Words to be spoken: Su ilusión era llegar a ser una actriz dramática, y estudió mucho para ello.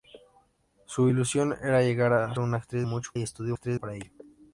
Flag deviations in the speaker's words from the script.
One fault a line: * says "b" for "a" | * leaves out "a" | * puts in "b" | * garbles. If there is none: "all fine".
* leaves out "ser"
* says "mucho" for "dramática"
* says "actriz" for "mucho"